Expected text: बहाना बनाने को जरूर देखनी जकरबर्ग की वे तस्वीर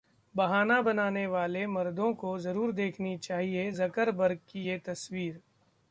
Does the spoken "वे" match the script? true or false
false